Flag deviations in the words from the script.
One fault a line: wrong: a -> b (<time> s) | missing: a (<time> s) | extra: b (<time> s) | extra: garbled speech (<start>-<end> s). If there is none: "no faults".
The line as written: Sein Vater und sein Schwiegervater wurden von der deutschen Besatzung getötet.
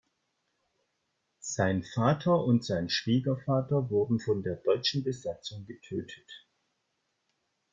no faults